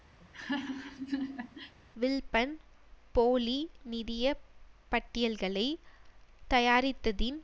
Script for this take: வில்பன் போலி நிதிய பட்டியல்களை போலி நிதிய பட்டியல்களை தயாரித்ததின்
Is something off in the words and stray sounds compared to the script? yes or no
yes